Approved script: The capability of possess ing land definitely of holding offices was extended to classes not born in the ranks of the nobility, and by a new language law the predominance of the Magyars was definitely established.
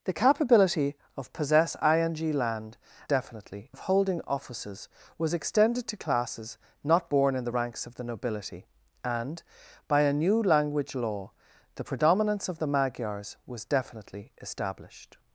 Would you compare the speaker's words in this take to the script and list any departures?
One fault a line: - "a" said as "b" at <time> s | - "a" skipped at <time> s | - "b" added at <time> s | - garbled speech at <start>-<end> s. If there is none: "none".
none